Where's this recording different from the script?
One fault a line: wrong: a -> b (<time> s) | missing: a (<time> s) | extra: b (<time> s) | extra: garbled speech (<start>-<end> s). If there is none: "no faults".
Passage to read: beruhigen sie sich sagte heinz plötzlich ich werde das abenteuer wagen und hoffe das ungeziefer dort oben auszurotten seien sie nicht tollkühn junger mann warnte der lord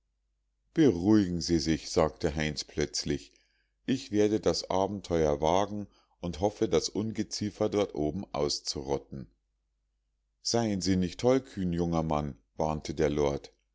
no faults